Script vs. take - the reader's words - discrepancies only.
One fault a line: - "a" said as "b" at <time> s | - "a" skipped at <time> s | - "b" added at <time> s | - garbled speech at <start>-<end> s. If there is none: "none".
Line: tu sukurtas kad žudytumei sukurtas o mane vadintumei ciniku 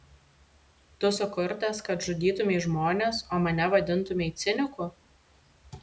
- "sukurtas" said as "žmones" at 2.7 s